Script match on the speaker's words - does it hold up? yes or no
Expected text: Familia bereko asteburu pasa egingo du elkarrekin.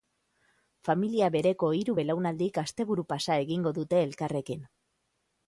no